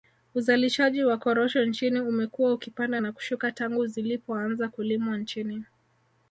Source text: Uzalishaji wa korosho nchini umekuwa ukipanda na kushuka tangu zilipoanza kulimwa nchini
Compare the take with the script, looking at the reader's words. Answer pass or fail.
pass